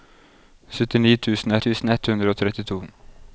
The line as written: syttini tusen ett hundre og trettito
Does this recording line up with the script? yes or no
no